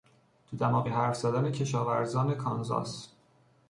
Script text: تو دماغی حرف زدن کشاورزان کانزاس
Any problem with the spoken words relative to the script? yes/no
no